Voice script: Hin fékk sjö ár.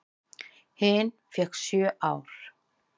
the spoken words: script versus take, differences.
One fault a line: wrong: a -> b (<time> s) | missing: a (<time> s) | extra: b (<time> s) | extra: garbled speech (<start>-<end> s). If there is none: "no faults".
no faults